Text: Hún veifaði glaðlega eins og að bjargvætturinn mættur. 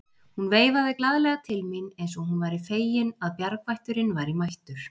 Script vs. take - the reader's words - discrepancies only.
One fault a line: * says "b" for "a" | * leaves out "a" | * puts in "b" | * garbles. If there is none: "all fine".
* puts in "til mín"
* puts in "hún væri fegin"
* puts in "væri"